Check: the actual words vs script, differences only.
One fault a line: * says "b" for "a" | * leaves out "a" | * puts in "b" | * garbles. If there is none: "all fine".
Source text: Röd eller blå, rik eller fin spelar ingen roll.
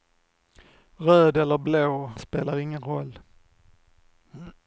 * leaves out "rik eller fin"